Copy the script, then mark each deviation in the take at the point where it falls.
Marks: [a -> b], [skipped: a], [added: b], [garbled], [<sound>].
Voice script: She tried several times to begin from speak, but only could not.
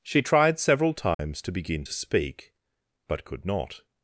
She tried several times [dropout] to begin [from -> to] speak, but [skipped: only] could not.